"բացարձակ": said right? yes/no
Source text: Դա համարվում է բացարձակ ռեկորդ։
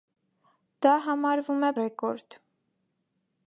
no